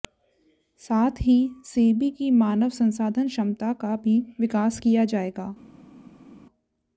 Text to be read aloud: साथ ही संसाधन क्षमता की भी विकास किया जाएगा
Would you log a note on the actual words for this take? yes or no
yes